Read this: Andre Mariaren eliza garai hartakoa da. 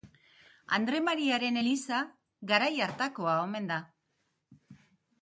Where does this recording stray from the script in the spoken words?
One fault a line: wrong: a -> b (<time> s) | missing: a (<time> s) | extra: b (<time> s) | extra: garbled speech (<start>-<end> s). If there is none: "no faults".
extra: omen (3.5 s)